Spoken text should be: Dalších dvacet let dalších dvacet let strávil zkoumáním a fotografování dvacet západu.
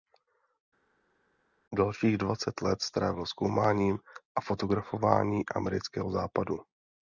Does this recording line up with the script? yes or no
no